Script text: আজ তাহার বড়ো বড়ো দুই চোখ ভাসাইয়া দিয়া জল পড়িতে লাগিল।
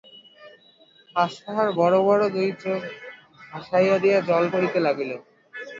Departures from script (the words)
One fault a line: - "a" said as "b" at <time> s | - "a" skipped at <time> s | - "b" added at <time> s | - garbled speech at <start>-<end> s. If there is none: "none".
none